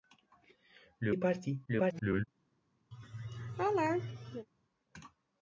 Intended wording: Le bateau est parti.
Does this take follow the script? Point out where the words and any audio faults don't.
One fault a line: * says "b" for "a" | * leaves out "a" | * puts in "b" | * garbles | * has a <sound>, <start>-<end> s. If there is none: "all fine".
* leaves out "bateau"
* garbles
* has a laugh, 2.9-4.5 s